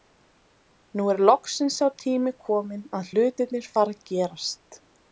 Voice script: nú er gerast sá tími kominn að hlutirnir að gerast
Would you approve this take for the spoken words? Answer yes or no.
no